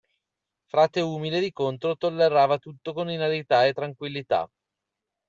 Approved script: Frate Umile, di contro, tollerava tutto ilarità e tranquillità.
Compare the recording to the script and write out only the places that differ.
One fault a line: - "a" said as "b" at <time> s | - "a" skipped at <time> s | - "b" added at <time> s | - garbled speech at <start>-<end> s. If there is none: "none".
- "con" added at 2.9 s